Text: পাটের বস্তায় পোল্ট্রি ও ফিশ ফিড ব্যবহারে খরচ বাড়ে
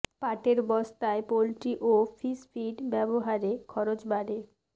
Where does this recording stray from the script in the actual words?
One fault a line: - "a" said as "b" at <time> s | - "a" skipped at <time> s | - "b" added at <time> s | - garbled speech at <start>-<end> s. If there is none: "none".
none